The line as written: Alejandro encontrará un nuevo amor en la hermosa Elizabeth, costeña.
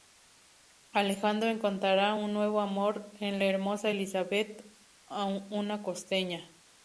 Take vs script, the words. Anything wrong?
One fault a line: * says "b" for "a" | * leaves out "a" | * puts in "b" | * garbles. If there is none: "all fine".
* puts in "una"